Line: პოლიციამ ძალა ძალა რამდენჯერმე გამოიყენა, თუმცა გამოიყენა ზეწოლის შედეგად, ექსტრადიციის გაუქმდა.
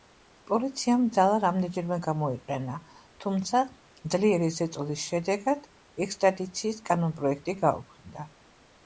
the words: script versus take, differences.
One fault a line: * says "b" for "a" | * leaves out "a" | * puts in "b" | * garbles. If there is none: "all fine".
* leaves out "ძალა"
* says "ძლიერი" for "გამოიყენა"
* puts in "კანონპროექტი"